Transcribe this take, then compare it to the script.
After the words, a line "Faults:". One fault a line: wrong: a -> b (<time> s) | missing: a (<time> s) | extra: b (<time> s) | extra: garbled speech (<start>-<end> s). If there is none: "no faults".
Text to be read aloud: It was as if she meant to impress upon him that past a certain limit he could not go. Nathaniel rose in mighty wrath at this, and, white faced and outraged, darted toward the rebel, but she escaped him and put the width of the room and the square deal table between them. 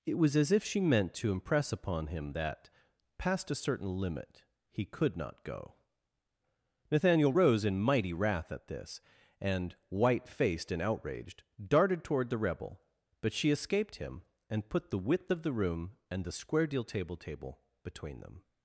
It was as if she meant to impress upon him that past a certain limit he could not go. Nathaniel rose in mighty wrath at this, and, white faced and outraged, darted toward the rebel, but she escaped him and put the width of the room and the square deal table table between them.
Faults:
extra: table (17.2 s)